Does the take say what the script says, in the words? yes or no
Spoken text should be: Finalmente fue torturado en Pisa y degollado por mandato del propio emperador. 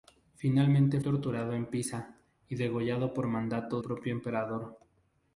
no